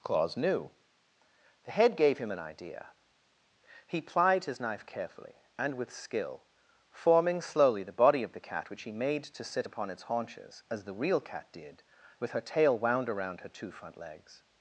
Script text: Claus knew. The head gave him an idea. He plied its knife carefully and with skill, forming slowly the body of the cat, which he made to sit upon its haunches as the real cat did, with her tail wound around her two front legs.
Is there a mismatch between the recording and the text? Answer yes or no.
yes